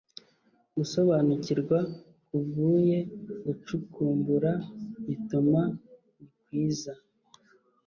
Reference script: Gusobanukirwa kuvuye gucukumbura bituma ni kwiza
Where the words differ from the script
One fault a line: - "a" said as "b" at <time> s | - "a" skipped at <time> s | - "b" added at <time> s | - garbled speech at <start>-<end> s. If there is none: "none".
none